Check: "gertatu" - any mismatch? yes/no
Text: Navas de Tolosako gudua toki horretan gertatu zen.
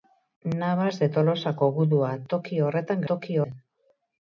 yes